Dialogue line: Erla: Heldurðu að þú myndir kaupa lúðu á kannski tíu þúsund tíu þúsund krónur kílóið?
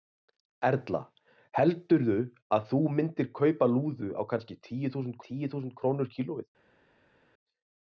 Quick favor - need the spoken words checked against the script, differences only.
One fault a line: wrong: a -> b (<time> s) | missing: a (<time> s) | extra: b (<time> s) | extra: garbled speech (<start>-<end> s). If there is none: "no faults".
no faults